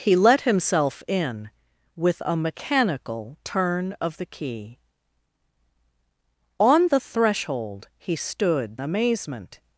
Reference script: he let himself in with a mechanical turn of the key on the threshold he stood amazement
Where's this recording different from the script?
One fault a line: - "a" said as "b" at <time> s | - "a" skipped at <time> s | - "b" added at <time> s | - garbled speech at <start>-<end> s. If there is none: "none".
none